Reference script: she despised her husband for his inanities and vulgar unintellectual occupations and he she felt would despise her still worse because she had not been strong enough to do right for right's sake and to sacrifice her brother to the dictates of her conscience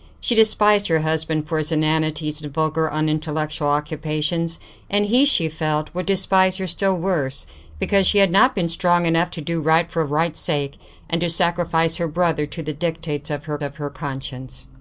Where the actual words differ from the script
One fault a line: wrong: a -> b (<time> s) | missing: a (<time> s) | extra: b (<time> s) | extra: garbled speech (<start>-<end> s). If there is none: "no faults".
extra: of her (13.6 s)